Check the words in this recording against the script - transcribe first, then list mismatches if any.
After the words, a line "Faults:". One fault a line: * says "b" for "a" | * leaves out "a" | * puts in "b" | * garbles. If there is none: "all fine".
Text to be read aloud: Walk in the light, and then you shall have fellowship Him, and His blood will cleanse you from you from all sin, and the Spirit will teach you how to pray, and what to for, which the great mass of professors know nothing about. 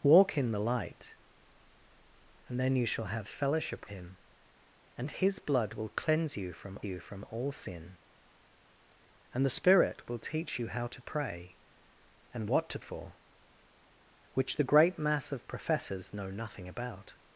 Walk in the light, and then you shall have fellowship Him, and His blood will cleanse you from you from all sin, and the Spirit will teach you how to pray, and what to for, which the great mass of professors know nothing about.
Faults:
all fine